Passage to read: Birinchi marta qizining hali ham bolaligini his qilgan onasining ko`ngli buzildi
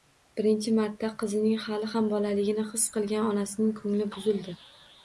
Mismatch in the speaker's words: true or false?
false